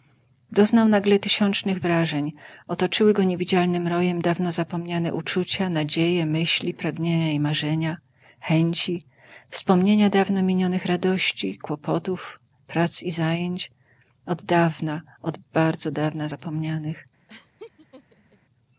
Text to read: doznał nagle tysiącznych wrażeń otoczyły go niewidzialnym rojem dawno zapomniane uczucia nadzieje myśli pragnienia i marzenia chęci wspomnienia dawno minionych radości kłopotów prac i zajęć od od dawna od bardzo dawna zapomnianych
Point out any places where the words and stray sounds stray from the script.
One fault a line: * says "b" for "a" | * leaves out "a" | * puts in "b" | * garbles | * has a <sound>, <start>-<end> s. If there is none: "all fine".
* leaves out "od"
* has a laugh, 17.3-18.4 s